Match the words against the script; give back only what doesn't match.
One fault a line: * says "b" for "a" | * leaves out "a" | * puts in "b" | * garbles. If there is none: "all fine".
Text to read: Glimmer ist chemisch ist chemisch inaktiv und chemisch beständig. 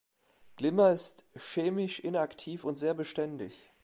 * leaves out "ist chemisch"
* says "sehr" for "chemisch"